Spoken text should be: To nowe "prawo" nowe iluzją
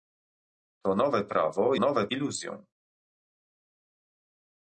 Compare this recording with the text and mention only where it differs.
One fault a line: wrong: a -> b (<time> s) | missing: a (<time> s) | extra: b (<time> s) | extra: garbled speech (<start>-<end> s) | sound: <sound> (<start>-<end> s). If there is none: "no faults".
no faults